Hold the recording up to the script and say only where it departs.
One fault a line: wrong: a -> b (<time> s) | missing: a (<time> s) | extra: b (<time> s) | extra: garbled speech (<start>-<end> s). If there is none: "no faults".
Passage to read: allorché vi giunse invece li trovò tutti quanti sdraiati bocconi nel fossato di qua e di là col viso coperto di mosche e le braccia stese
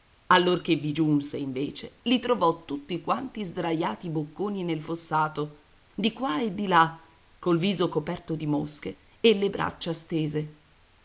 no faults